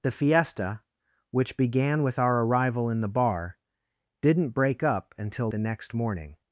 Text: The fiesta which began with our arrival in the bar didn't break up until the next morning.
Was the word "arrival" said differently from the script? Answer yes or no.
no